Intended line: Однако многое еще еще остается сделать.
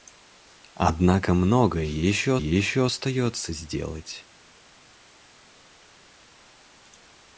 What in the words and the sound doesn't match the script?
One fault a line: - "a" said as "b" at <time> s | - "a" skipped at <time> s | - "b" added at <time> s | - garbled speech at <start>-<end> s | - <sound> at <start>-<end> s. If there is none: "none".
none